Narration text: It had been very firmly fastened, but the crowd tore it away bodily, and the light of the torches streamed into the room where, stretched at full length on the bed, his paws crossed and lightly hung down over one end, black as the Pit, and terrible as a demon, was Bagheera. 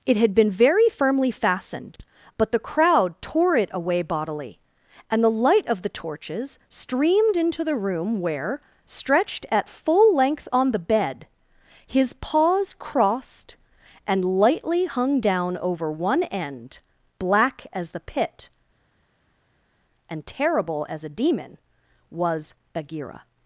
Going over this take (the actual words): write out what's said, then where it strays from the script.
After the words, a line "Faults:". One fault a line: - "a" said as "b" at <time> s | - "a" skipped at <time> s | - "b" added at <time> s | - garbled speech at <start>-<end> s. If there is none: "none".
It had been very firmly fastened, but the crowd tore it away bodily, and the light of the torches streamed into the room where, stretched at full length on the bed, his paws crossed and lightly hung down over one end, black as the Pit, and terrible as a demon, was Bagheera.
Faults:
none